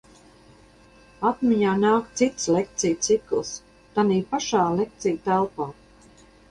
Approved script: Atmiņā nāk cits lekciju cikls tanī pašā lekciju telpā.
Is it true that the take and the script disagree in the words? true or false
false